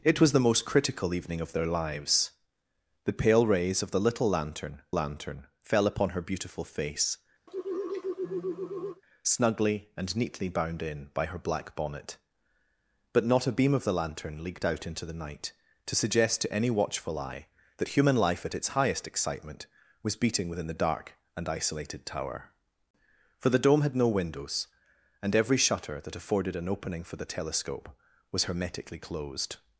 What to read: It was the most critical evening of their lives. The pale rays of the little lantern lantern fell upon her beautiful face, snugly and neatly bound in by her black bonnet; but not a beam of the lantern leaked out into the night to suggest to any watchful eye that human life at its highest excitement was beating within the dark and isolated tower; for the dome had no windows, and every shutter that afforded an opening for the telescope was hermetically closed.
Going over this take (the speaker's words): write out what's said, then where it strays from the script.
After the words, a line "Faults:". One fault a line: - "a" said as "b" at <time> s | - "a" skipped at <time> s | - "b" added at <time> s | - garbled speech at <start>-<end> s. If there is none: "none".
It was the most critical evening of their lives. The pale rays of the little lantern lantern fell upon her beautiful face, snugly and neatly bound in by her black bonnet; but not a beam of the lantern leaked out into the night to suggest to any watchful eye that human life at its highest excitement was beating within the dark and isolated tower; for the dome had no windows, and every shutter that afforded an opening for the telescope was hermetically closed.
Faults:
none